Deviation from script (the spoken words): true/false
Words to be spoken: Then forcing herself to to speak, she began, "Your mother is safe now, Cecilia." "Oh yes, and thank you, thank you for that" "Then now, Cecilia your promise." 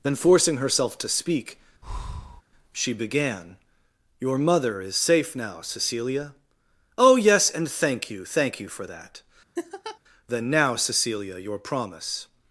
true